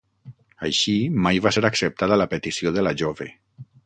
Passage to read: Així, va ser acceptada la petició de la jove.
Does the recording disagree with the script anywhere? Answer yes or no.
yes